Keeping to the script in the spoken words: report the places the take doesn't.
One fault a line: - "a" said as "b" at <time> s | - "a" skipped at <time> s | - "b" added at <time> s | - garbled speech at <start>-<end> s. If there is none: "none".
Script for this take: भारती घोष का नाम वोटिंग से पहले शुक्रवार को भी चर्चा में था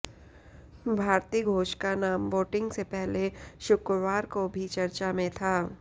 none